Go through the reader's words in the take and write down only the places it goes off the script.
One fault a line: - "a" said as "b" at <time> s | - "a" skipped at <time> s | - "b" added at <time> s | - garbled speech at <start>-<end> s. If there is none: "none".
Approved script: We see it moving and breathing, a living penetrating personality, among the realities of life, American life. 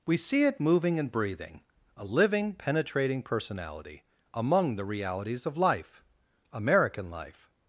none